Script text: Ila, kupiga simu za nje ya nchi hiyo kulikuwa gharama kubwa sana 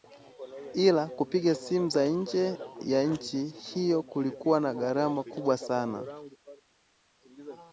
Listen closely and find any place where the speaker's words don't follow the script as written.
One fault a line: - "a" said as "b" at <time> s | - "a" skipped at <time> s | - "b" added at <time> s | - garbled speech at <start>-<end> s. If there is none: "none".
- "na" added at 4.6 s